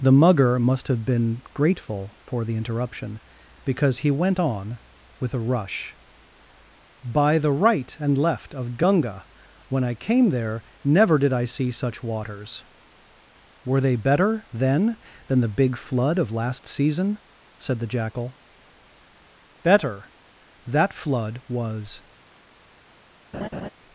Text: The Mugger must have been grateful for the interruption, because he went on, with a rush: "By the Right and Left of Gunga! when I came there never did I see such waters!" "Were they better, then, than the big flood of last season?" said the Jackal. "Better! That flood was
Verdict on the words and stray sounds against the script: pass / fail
fail